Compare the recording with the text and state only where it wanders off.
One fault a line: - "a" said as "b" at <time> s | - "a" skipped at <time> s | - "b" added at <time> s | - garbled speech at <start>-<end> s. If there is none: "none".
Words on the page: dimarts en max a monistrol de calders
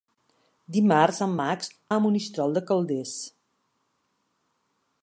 none